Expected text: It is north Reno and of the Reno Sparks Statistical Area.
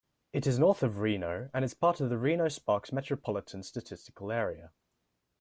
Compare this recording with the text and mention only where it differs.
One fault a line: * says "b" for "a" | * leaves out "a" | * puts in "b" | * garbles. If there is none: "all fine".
* puts in "of"
* puts in "is part"
* puts in "Metropolitan"